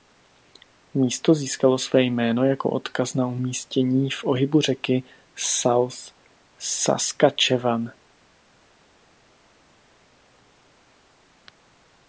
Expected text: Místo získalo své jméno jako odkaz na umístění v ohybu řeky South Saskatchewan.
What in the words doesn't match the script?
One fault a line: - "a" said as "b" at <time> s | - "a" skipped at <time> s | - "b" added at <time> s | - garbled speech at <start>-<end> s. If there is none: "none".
none